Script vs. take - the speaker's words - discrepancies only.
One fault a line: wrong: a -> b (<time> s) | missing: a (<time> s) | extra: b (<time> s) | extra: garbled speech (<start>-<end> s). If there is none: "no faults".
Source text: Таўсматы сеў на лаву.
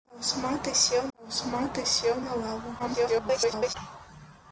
extra: таўсматы сеў (1.2 s)
extra: garbled speech (2.8-3.7 s)